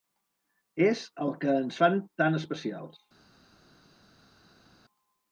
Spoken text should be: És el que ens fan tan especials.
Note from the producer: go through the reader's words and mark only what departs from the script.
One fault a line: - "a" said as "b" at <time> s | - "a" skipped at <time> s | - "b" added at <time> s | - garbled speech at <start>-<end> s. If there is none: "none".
none